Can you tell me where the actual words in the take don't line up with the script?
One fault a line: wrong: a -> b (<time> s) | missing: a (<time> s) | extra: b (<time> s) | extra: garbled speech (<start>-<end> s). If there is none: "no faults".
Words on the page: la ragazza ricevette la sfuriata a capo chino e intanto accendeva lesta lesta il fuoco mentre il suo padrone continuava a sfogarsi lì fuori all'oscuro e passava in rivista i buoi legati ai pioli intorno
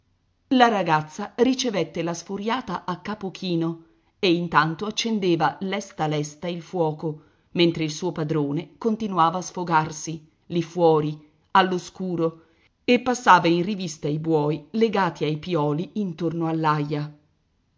no faults